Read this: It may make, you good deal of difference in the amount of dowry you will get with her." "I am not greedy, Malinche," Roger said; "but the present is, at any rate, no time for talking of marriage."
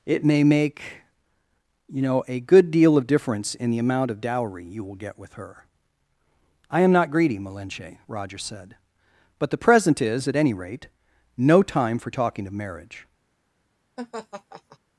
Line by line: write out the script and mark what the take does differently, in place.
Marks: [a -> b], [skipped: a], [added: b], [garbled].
It may make, you [added: know a] good deal of difference in the amount of dowry you will get with her." "I am not greedy, Malinche," Roger said; "but the present is, at any rate, no time for talking of marriage."